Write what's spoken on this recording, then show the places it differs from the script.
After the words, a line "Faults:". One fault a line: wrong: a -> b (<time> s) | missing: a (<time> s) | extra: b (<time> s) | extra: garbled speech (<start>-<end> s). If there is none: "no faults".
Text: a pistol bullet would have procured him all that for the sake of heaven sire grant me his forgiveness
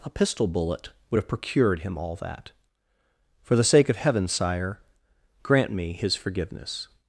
a pistol bullet would have procured him all that for the sake of heaven sire grant me his forgiveness
Faults:
no faults